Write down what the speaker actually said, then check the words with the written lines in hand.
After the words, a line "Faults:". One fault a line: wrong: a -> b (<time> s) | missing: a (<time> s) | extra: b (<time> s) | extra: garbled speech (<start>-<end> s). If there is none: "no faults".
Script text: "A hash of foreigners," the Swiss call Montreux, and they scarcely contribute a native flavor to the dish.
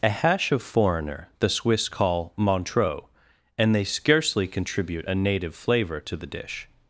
"A hash of foreigner," the Swiss call Montreux, and they scarcely contribute a native flavor to the dish.
Faults:
wrong: foreigners -> foreigner (0.6 s)